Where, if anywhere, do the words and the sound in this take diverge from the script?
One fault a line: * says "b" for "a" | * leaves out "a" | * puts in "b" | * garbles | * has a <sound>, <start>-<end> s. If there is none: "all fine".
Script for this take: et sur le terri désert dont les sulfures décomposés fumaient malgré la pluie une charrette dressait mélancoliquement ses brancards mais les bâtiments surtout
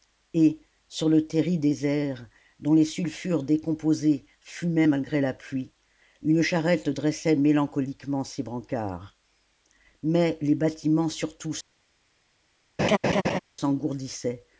* has a laugh, 12.8-13.4 s